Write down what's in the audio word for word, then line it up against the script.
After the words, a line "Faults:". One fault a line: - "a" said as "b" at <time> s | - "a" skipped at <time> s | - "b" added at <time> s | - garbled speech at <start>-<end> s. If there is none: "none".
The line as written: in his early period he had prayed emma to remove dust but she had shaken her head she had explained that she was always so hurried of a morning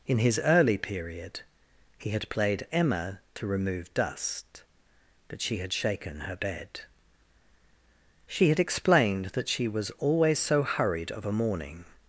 in his early period he had played emma to remove dust but she had shaken her bed she had explained that she was always so hurried of a morning
Faults:
- "prayed" said as "played" at 2.3 s
- "head" said as "bed" at 6.3 s